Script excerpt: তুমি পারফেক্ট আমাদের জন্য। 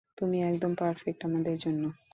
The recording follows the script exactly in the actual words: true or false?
false